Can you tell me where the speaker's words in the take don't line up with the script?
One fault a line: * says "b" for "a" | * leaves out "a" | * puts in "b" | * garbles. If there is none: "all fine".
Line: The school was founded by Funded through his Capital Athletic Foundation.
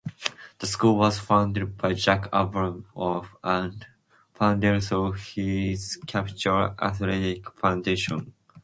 * puts in "Jack Abramoff and"